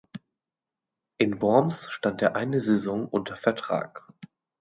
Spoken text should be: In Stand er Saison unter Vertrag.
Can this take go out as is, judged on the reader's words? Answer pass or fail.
fail